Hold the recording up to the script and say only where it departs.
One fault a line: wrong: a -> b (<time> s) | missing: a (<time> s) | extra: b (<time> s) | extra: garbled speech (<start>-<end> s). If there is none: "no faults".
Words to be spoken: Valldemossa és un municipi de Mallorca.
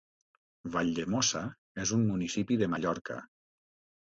no faults